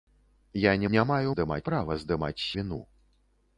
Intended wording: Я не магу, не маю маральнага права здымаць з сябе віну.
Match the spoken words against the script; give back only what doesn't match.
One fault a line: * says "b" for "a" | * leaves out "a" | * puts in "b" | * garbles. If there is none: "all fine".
* leaves out "магу"
* says "здымаць" for "маральнага"
* leaves out "сябе"